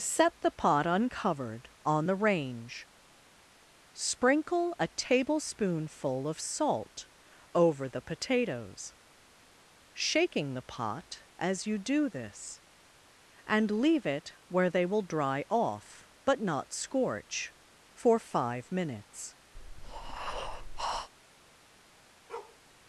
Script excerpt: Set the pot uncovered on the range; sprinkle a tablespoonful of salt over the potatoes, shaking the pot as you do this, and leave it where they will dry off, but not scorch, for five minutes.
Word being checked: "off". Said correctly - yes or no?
yes